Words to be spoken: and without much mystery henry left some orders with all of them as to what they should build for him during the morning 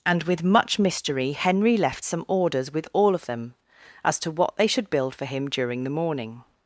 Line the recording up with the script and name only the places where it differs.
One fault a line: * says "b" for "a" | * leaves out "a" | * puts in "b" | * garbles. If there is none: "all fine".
* says "with" for "without"